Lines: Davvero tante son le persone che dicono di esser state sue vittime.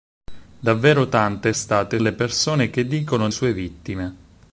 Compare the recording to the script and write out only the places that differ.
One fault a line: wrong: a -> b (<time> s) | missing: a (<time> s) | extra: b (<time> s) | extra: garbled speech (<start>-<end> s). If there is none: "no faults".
wrong: son -> state (1.5 s)
missing: di esser state (3.3 s)